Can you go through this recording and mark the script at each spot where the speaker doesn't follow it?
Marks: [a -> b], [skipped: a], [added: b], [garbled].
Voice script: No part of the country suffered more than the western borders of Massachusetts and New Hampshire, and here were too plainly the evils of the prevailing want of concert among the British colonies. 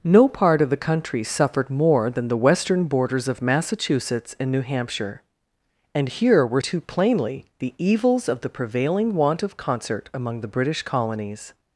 No part of the country suffered more than the western borders of Massachusetts and New Hampshire, and here were too plainly the evils of the prevailing want of concert among the British colonies.